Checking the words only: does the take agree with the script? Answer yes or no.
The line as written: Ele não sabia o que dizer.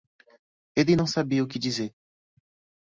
yes